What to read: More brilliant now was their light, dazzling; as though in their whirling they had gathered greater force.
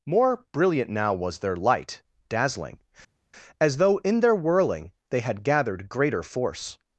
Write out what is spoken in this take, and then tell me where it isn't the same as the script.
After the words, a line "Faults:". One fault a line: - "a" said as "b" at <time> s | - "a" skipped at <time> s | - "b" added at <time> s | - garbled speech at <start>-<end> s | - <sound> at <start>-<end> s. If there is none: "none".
More brilliant now was their light, dazzling; as though in their whirling they had gathered greater force.
Faults:
none